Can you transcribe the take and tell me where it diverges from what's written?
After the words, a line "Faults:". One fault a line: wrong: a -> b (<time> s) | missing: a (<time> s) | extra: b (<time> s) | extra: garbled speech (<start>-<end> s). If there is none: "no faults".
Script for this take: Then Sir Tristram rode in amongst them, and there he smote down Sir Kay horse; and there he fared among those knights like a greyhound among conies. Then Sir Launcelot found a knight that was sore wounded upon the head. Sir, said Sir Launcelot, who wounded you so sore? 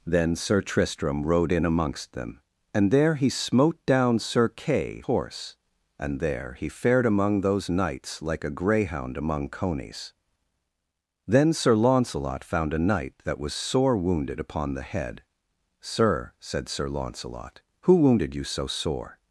Then Sir Tristram rode in amongst them, and there he smote down Sir Kay horse; and there he fared among those knights like a greyhound among conies. Then Sir Launcelot found a knight that was sore wounded upon the head. Sir, said Sir Launcelot, who wounded you so sore?
Faults:
no faults